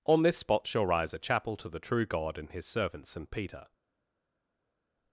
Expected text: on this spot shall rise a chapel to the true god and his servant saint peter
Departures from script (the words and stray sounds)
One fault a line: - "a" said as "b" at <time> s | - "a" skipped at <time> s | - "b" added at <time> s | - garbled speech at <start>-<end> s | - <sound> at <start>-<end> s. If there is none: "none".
none